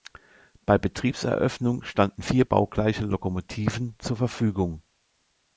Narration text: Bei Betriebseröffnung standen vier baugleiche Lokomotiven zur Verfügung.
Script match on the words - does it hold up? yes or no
yes